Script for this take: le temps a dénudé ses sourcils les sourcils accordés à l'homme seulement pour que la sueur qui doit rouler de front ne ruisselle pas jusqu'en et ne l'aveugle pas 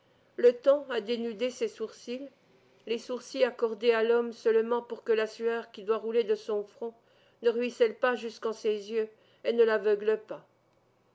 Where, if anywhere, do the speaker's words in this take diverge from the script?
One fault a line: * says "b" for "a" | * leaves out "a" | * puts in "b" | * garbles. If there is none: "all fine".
* puts in "son"
* puts in "ses yeux"